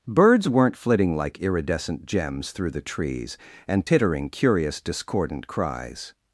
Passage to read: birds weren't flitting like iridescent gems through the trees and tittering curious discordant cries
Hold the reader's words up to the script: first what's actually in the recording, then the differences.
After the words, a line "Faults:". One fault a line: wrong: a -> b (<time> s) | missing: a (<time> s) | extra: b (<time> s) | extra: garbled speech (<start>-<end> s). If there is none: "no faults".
birds weren't flitting like iridescent gems through the trees and tittering curious discordant cries
Faults:
no faults